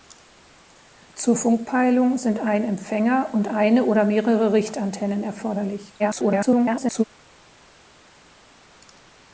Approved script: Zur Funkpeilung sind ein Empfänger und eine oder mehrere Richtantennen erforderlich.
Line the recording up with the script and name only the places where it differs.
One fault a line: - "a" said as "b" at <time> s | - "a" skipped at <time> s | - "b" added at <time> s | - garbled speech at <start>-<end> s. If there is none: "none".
- garbled speech at 6.0-7.0 s